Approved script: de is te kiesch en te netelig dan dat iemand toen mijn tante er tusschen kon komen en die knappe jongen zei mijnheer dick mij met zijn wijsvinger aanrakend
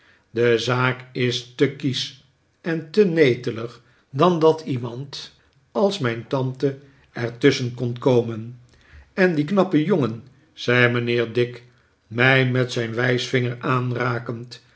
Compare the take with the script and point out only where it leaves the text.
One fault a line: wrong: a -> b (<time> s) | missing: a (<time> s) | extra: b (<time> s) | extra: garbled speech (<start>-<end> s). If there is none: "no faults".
extra: zaak (0.6 s)
wrong: toen -> als (5.7 s)